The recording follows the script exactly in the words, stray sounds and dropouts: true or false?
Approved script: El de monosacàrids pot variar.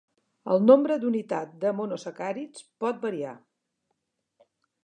false